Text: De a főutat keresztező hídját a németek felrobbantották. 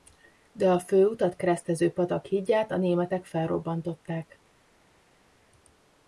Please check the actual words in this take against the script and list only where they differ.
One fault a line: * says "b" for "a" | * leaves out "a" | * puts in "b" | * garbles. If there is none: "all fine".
* puts in "patak"